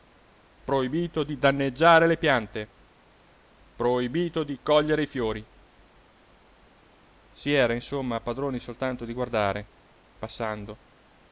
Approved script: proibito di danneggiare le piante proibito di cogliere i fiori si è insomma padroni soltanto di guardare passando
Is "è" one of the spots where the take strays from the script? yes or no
yes